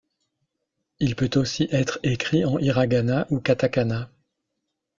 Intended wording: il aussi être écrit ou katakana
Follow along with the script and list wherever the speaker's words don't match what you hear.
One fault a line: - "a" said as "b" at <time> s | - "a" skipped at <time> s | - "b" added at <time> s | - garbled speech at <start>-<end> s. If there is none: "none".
- "peut" added at 1.1 s
- "en hiragana" added at 2.4 s